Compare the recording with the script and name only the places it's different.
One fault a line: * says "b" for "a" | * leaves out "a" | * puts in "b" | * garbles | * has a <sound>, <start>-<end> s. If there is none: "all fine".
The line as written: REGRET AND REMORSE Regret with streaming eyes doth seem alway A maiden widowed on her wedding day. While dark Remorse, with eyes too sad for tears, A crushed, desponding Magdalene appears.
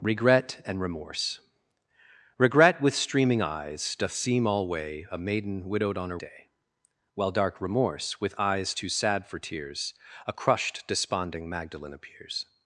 * leaves out "wedding"